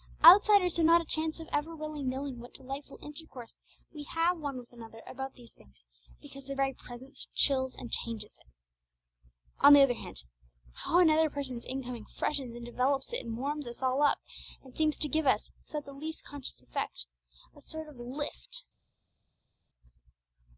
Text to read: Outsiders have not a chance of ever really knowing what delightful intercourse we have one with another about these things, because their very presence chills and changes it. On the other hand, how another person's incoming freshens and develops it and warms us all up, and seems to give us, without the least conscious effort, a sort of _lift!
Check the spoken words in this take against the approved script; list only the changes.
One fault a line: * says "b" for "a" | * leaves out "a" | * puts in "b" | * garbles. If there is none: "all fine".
all fine